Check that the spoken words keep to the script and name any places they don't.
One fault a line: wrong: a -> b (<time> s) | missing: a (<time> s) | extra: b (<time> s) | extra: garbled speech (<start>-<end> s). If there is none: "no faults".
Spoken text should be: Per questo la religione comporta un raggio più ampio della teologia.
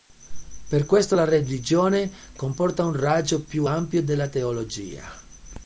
no faults